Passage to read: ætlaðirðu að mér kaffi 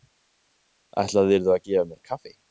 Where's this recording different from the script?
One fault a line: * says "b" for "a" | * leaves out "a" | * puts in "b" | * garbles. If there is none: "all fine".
* puts in "gefa"